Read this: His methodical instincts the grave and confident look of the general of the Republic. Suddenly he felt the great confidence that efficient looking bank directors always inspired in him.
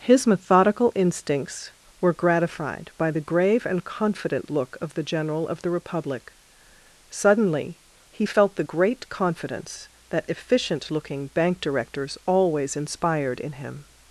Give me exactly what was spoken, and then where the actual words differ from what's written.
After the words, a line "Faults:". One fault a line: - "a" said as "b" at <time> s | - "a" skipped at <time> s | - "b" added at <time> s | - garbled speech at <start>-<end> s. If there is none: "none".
His methodical instincts were gratified by the grave and confident look of the general of the Republic. Suddenly he felt the great confidence that efficient looking bank directors always inspired in him.
Faults:
- "were gratified by" added at 2.0 s